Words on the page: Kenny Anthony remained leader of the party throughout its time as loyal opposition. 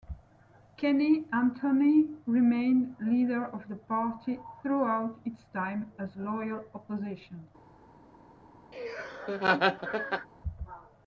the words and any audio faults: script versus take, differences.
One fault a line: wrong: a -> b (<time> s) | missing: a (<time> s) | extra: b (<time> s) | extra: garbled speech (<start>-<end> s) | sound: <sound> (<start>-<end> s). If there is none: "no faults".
sound: laugh (8.7-10.3 s)